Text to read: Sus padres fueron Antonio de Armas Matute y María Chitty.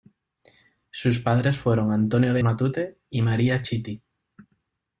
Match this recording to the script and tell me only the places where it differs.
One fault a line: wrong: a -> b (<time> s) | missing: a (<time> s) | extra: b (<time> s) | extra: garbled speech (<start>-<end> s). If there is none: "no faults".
missing: Armas (2.4 s)